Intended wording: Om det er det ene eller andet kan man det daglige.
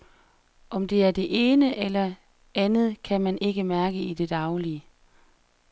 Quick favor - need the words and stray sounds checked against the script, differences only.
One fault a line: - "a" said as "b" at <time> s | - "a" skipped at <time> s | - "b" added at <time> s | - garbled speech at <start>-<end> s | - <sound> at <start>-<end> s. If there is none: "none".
- "ikke mærke i" added at 3.4 s